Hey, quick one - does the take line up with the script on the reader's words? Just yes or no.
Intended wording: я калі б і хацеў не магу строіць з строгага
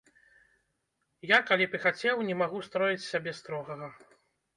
no